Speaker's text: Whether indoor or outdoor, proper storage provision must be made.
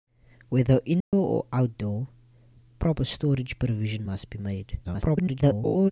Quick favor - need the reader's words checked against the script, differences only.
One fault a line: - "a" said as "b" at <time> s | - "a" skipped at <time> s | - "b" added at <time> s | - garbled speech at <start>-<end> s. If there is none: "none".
- garbled speech at 4.8-5.9 s